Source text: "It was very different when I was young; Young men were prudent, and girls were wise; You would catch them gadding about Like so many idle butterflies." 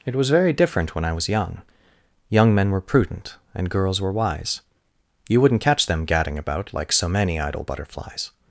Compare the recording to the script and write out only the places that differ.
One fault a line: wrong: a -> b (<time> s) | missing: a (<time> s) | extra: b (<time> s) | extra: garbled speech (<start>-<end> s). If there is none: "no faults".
wrong: would -> wouldn't (5.4 s)